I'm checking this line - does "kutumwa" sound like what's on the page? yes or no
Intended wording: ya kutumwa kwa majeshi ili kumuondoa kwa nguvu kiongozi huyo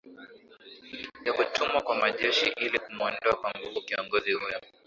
yes